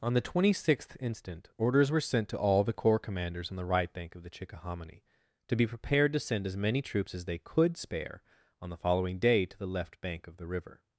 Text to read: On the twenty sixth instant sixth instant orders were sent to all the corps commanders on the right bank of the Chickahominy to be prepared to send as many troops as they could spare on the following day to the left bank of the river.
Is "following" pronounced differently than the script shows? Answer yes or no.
no